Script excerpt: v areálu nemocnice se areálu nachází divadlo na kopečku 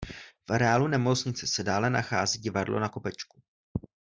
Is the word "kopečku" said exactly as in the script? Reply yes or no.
yes